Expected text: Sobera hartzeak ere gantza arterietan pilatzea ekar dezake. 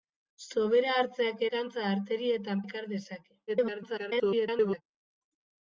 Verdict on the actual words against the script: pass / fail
fail